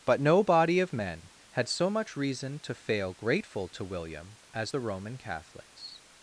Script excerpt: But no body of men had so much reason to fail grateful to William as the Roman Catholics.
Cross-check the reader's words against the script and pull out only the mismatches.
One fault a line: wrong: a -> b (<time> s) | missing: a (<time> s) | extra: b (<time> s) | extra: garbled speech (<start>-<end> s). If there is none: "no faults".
no faults